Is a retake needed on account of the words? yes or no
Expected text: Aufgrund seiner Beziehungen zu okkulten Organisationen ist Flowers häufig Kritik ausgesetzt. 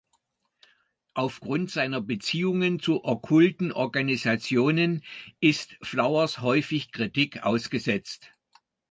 no